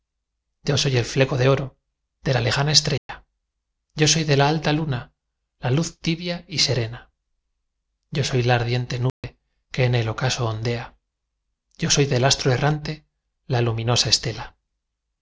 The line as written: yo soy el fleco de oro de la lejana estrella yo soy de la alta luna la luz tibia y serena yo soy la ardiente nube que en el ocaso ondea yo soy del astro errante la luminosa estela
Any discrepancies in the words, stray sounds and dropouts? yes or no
yes